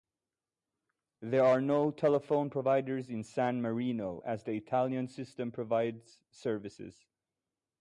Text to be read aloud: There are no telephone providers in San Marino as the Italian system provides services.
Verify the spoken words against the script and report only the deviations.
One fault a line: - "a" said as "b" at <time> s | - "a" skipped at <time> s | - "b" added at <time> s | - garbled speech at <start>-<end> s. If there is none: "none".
none